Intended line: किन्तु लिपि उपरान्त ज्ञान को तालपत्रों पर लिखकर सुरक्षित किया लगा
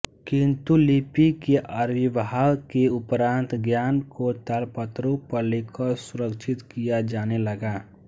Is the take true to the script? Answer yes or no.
no